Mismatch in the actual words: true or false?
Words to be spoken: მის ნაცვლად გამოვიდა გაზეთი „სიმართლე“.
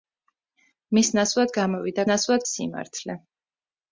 true